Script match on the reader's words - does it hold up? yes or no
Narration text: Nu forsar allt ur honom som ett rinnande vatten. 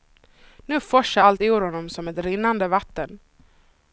yes